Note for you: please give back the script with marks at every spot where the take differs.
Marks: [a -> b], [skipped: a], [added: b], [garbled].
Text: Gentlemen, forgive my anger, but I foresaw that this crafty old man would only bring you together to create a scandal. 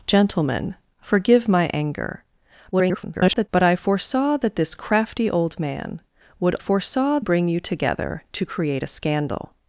Gentlemen, forgive my anger, [garbled] but I foresaw that this crafty old man would [only -> foresaw] bring you together to create a scandal.